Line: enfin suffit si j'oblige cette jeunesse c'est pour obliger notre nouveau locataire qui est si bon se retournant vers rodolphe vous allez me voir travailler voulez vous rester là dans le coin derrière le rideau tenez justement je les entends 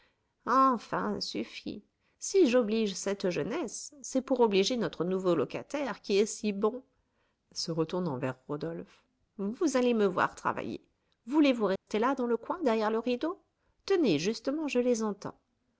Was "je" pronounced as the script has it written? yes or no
yes